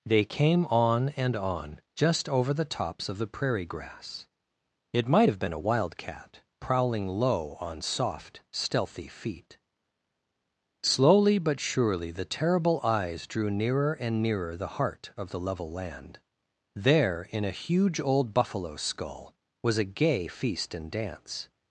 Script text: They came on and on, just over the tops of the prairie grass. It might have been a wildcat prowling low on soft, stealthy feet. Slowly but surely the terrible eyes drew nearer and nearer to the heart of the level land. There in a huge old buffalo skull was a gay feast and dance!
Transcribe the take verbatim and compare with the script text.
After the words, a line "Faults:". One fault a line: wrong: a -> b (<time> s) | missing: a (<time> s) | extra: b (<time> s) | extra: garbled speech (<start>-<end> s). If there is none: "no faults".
They came on and on, just over the tops of the prairie grass. It might have been a wildcat prowling low on soft, stealthy feet. Slowly but surely the terrible eyes drew nearer and nearer the heart of the level land. There in a huge old buffalo skull was a gay feast and dance!
Faults:
missing: to (14.5 s)